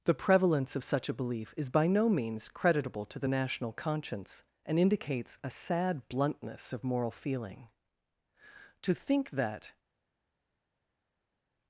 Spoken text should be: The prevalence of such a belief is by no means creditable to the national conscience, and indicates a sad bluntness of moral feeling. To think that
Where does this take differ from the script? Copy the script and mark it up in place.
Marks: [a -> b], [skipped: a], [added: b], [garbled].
The prevalence of such a belief is by no means creditable to the national conscience, and indicates a sad bluntness of moral feeling. To think that